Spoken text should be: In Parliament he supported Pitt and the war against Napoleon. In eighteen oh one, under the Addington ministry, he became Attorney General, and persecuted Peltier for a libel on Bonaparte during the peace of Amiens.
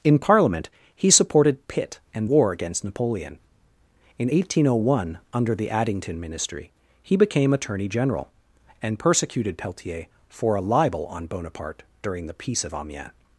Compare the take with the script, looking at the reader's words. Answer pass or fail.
fail